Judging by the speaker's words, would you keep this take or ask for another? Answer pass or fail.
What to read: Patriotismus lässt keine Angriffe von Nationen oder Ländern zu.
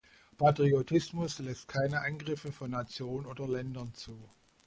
pass